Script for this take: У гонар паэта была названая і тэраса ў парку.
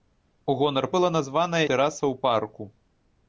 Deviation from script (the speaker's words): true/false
true